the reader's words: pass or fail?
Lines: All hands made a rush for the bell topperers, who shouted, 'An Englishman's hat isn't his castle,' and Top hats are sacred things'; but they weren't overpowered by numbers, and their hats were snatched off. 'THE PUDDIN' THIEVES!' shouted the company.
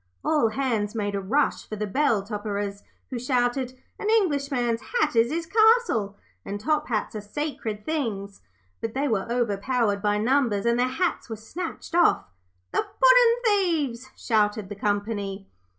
fail